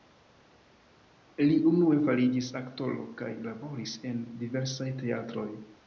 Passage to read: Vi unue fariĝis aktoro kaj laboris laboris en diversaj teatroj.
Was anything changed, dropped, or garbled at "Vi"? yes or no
yes